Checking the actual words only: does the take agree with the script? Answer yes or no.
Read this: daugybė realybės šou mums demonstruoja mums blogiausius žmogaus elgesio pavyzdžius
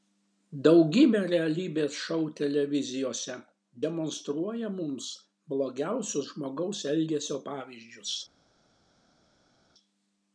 no